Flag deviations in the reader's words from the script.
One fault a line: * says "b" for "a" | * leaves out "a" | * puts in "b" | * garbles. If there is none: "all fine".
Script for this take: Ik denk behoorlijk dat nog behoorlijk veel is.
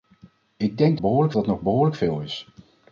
all fine